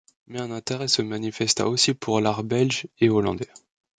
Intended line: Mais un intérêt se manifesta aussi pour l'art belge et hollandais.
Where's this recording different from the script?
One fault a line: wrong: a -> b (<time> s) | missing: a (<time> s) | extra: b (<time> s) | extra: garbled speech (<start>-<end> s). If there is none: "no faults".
no faults